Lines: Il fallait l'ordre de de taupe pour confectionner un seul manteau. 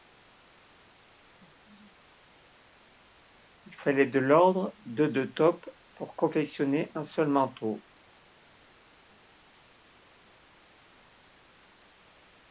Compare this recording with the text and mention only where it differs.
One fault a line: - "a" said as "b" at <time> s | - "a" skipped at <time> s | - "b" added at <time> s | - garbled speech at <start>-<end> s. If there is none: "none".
- "de" added at 4.1 s